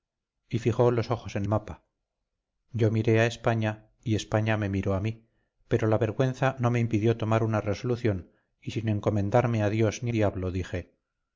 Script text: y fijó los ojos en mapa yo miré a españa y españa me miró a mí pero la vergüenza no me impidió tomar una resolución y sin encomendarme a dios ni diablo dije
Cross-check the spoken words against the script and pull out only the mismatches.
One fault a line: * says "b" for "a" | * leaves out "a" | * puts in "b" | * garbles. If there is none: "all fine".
all fine